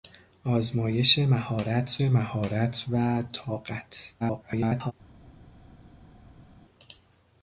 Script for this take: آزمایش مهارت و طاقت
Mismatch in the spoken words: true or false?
true